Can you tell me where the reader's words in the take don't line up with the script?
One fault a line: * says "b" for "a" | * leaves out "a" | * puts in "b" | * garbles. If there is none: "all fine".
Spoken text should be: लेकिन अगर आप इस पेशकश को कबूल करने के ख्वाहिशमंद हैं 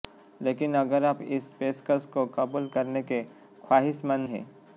all fine